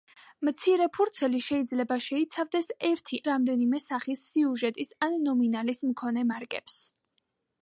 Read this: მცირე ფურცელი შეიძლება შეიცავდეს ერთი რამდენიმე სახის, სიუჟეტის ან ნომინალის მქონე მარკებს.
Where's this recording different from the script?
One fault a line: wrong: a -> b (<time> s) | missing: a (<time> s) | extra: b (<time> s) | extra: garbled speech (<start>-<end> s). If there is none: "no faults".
no faults